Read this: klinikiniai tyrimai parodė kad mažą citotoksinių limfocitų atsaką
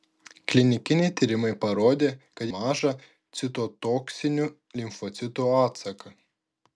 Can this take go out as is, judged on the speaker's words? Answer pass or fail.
pass